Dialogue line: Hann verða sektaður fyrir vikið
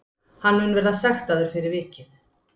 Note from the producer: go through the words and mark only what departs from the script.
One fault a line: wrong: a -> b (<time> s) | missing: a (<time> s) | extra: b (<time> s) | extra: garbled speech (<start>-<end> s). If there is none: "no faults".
extra: mun (0.6 s)